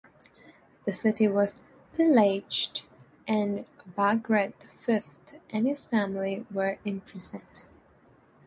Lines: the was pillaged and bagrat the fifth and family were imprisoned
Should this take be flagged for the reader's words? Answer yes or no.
yes